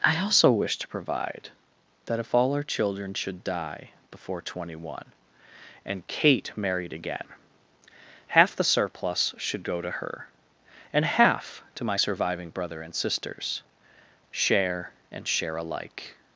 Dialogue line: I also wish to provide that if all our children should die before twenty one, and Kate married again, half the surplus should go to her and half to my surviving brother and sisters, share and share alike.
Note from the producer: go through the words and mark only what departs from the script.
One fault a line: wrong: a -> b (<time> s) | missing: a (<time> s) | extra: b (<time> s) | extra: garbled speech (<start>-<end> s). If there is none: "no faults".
no faults